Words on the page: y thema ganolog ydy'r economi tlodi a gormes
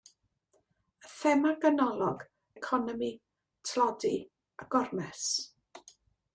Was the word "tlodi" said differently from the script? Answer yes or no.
no